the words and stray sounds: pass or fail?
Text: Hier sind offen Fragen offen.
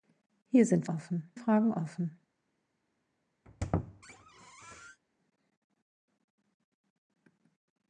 fail